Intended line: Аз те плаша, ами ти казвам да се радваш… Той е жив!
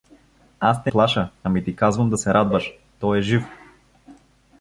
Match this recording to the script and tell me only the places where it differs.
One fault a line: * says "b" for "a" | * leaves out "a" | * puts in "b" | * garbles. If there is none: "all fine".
all fine